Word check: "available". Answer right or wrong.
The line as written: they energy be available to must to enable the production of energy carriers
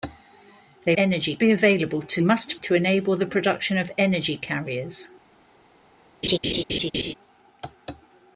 right